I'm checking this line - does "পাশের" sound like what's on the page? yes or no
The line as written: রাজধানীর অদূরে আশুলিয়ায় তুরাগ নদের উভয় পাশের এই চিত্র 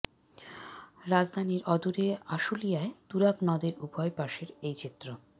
yes